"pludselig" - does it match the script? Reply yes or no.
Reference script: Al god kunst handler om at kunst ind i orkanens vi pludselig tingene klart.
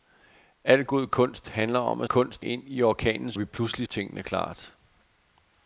yes